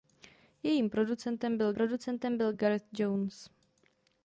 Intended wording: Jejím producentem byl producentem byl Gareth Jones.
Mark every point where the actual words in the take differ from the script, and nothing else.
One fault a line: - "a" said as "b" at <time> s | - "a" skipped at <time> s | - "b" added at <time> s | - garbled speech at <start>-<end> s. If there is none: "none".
none